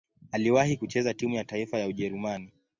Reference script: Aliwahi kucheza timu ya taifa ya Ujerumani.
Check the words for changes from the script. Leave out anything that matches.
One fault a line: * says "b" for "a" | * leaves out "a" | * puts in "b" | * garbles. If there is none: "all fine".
all fine